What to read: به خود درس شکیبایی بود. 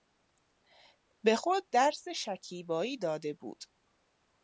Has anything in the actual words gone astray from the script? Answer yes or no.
yes